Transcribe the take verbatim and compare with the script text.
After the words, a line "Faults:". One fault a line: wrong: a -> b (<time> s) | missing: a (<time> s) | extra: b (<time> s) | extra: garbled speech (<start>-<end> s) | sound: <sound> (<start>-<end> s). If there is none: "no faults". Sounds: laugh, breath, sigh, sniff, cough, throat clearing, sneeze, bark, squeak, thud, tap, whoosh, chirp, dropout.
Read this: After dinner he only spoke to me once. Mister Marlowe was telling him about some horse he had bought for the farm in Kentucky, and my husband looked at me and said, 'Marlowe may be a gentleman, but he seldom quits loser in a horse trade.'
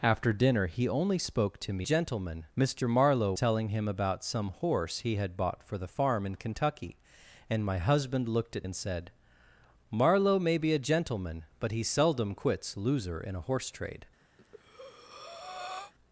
After dinner he only spoke to me gentleman. Mister Marlowe telling him about some horse he had bought for the farm in Kentucky, and my husband looked at and said, 'Marlowe may be a gentleman, but he seldom quits loser in a horse trade.'
Faults:
wrong: once -> gentleman (1.8 s)
missing: was (3.3 s)
missing: me (8.7 s)
sound: breath (14.4-15.9 s)